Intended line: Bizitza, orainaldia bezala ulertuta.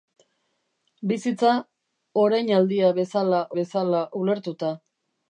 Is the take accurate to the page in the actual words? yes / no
no